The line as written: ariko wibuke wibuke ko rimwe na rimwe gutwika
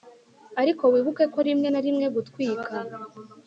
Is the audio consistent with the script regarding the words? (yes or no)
no